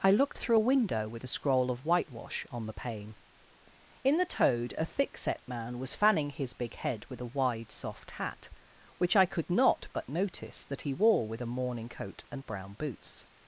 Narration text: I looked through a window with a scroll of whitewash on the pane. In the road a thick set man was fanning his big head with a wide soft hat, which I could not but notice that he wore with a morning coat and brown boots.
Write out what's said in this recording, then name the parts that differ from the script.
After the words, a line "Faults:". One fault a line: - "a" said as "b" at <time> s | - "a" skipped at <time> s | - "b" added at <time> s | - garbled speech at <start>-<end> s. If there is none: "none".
I looked through a window with a scroll of whitewash on the pane. In the toad a thick set man was fanning his big head with a wide soft hat, which I could not but notice that he wore with a morning coat and brown boots.
Faults:
- "road" said as "toad" at 4.2 s